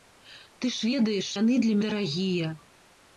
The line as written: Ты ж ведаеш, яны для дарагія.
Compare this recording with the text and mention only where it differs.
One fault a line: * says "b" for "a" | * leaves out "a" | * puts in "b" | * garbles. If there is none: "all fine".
all fine